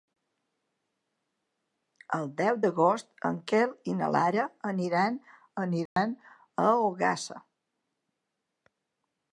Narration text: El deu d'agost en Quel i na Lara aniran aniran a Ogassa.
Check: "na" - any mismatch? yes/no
no